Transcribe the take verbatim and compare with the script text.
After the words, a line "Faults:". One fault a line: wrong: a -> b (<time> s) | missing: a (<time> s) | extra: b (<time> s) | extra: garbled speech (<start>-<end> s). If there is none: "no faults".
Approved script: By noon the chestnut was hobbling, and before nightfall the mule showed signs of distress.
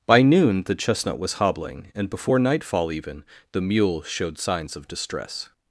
By noon the chestnut was hobbling, and before nightfall even the mule showed signs of distress.
Faults:
extra: even (2.9 s)